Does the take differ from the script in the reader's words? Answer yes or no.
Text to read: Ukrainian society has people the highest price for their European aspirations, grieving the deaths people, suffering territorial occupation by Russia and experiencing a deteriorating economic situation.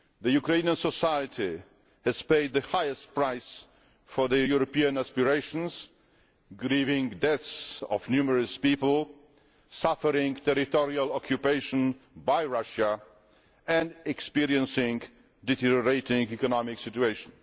yes